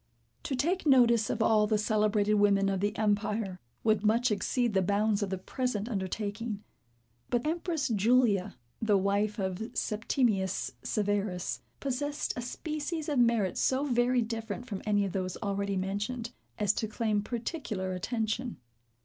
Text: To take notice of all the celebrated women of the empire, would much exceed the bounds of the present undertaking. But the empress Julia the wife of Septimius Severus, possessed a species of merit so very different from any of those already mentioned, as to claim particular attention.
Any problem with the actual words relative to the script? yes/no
yes